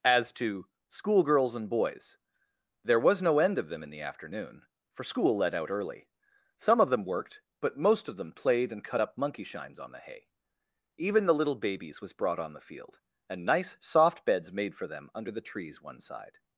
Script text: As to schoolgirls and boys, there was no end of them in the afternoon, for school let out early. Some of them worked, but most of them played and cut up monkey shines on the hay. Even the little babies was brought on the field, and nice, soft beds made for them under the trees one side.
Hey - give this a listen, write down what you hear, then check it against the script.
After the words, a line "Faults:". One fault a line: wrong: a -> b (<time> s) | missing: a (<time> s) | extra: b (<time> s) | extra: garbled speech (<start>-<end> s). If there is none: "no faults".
As to schoolgirls and boys, there was no end of them in the afternoon, for school let out early. Some of them worked, but most of them played and cut up monkey shines on the hay. Even the little babies was brought on the field, and nice, soft beds made for them under the trees one side.
Faults:
no faults